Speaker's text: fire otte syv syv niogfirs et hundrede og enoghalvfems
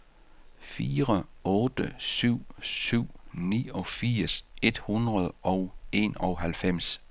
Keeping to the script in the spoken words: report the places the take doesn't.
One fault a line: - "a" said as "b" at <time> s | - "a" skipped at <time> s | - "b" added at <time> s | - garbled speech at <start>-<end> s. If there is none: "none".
none